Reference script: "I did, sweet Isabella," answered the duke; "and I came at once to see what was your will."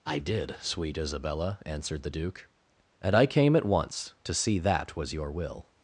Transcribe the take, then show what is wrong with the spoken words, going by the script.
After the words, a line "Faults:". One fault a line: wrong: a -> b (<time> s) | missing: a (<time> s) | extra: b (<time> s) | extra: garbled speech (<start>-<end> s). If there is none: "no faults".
"I did, sweet Isabella," answered the duke; "and I came at once to see that was your will."
Faults:
wrong: what -> that (4.6 s)